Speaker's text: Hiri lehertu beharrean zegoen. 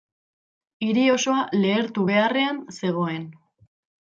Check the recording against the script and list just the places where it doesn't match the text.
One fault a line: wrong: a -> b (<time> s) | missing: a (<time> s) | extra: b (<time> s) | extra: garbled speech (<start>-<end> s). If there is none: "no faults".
extra: osoa (1.2 s)